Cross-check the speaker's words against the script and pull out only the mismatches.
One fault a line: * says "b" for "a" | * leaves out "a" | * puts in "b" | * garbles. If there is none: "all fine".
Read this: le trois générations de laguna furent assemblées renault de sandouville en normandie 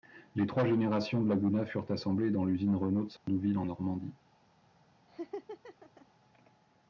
* says "les" for "le"
* puts in "dans l'usine"